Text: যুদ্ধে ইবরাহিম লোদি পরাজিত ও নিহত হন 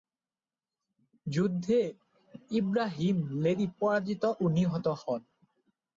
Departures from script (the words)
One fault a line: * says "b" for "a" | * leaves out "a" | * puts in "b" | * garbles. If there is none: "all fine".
all fine